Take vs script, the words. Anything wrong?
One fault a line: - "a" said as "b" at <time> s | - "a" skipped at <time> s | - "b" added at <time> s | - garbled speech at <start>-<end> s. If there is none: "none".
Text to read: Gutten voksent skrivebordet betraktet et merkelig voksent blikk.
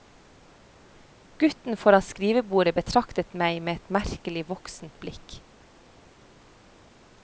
- "voksent" said as "foran" at 1.8 s
- "meg med" added at 3.4 s